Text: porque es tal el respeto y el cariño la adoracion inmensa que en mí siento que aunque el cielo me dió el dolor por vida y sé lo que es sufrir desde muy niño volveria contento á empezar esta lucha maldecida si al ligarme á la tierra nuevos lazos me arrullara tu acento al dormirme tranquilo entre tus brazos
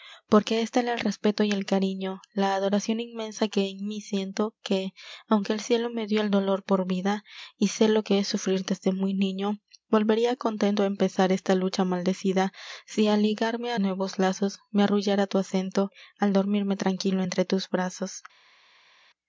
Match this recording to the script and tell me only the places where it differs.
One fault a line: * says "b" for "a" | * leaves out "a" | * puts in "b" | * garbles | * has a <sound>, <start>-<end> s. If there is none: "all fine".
* leaves out "la tierra"